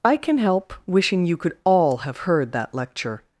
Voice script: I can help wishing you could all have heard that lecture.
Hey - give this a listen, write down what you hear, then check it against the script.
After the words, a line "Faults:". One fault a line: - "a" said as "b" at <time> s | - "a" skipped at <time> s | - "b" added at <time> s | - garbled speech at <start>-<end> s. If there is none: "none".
I can help wishing you could all have heard that lecture.
Faults:
none